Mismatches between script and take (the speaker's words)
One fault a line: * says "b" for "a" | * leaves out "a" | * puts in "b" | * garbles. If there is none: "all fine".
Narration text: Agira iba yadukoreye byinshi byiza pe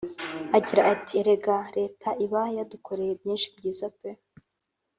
* puts in "ati Erega Leta"